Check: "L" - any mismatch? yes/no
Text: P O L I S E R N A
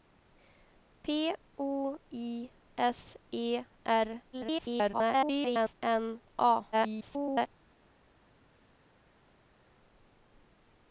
yes